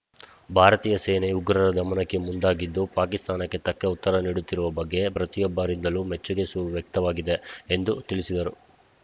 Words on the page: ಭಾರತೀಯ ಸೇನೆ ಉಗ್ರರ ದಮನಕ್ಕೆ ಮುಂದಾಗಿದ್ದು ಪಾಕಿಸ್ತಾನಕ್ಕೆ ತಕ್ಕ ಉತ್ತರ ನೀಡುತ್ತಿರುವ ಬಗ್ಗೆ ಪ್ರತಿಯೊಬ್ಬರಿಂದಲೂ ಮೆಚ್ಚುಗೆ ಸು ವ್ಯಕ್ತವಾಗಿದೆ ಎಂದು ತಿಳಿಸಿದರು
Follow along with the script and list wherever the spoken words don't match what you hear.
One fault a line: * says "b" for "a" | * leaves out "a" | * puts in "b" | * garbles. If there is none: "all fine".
all fine